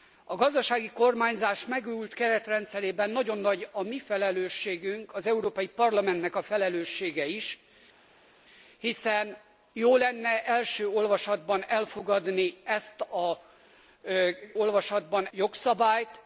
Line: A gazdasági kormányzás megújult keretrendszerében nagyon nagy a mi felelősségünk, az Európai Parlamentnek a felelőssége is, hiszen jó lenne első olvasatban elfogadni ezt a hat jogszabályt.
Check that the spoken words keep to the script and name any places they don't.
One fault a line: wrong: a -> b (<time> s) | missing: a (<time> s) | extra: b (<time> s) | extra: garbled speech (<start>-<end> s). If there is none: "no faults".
wrong: hat -> olvasatban (14.5 s)